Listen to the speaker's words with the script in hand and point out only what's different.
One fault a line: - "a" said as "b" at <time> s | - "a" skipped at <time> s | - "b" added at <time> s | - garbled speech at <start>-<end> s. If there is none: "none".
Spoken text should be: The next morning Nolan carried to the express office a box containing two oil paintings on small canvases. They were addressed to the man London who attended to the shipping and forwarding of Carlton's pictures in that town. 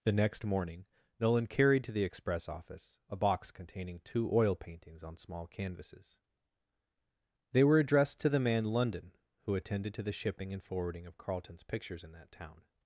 none